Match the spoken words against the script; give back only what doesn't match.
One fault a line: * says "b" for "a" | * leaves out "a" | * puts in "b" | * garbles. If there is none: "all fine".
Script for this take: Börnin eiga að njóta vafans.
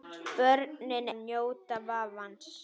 * leaves out "eiga"